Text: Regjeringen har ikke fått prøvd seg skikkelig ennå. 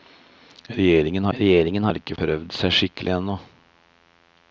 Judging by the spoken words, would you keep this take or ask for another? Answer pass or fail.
fail